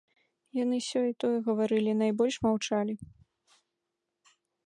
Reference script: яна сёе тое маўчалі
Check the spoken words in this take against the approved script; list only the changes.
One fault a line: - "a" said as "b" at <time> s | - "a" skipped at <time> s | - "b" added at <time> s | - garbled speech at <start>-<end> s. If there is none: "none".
- "яна" said as "яны" at 0.6 s
- "гаварылі найбольш" added at 1.5 s